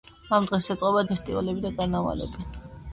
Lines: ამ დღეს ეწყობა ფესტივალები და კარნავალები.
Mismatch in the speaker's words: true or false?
false